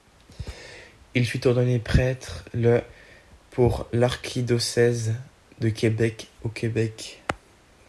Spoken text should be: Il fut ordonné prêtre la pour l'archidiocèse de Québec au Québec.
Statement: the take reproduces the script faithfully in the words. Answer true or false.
false